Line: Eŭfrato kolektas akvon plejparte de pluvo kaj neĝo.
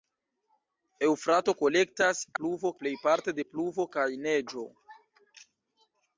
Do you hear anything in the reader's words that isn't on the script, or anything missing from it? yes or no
yes